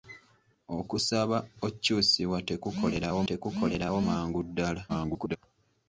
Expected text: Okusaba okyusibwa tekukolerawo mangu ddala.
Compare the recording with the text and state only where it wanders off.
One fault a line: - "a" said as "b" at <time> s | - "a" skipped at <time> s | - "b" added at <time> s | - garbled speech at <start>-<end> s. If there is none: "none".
- "tekukolerawo" added at 3.3 s
- garbled speech at 4.9-5.4 s